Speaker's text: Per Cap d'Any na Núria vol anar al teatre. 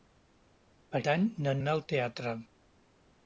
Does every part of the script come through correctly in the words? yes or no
no